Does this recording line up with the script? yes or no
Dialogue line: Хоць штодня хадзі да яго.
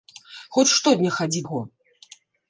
no